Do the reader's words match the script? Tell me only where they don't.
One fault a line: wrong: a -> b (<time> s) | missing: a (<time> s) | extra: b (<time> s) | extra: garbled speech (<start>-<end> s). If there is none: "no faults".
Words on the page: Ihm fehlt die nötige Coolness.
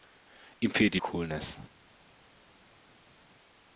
missing: nötige (1.0 s)